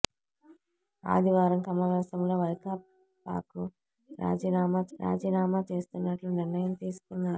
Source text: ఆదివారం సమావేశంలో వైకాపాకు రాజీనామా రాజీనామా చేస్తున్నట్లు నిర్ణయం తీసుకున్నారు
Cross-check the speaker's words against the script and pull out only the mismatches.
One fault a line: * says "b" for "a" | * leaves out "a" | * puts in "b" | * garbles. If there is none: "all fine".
all fine